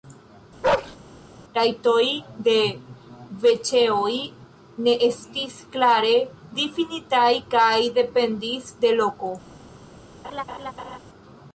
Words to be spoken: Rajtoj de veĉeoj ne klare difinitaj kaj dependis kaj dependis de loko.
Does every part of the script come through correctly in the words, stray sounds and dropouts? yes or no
no